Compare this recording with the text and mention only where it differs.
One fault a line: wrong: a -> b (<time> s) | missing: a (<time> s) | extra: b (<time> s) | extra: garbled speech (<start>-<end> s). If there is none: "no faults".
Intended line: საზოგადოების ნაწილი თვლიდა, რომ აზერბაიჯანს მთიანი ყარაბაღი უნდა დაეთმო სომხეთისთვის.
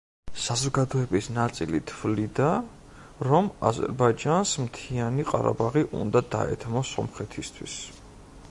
no faults